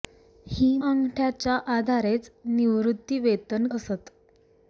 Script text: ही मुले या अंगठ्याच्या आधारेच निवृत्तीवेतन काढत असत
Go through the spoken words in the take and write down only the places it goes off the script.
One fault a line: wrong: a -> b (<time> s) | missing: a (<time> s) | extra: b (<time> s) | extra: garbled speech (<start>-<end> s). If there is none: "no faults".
missing: मुले या (0.8 s)
missing: काढत (3.7 s)